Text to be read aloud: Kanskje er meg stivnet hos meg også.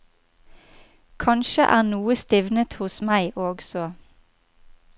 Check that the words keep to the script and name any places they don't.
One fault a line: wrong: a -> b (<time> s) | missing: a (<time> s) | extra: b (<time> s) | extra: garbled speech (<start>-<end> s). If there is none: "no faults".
wrong: meg -> noe (1.9 s)